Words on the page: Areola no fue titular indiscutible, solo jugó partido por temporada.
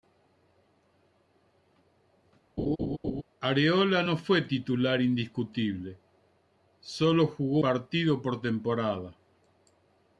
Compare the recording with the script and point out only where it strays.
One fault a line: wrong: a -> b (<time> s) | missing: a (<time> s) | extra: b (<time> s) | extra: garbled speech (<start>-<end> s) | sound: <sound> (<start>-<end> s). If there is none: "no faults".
sound: laugh (2.6-3.2 s)